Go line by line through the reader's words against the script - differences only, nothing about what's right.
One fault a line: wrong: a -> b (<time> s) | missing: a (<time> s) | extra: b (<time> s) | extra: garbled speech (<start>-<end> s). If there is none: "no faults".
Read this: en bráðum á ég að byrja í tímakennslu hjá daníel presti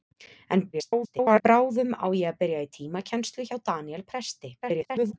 extra: garbled speech (0.7-1.4 s)
extra: garbled speech (4.6-5.1 s)